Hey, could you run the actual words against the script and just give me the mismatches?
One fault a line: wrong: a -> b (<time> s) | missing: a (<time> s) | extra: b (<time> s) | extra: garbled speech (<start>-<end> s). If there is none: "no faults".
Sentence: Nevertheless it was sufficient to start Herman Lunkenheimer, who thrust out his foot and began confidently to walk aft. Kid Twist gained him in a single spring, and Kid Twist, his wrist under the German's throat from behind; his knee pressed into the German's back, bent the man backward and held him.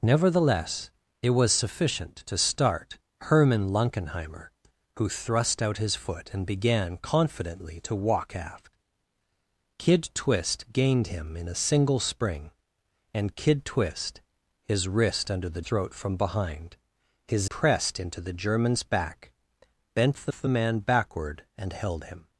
missing: German's (15.6 s)
missing: knee (17.5 s)
extra: the (20.3 s)